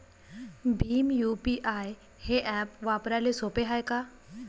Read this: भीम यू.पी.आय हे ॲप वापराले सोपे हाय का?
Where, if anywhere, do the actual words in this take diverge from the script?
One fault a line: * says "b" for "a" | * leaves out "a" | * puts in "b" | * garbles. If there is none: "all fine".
all fine